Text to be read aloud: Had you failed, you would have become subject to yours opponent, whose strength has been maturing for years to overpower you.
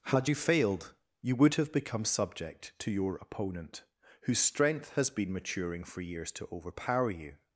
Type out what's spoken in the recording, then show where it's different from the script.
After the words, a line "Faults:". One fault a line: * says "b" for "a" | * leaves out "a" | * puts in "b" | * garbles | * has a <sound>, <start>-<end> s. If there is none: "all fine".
Had you failed, you would have become subject to your opponent, whose strength has been maturing for years to overpower you.
Faults:
* says "your" for "yours"